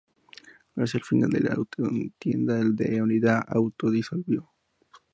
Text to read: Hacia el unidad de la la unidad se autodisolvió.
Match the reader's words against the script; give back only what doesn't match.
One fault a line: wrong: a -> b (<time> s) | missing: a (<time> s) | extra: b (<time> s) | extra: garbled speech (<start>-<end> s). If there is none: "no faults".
wrong: unidad -> final (1.0 s)
extra: contienda (1.6 s)